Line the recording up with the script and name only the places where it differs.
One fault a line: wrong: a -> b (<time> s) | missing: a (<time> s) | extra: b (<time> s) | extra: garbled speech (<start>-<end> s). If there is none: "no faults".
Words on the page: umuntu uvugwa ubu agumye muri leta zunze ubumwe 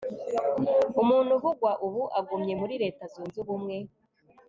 no faults